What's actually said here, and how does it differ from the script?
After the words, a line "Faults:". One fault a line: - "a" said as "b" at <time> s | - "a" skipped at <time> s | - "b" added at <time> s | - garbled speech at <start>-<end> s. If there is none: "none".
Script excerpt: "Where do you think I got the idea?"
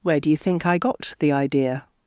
"Where do you think I got the idea?"
Faults:
none